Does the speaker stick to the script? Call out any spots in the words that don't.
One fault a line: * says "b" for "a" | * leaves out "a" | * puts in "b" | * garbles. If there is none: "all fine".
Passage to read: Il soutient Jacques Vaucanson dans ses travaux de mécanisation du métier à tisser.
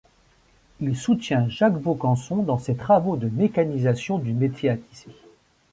all fine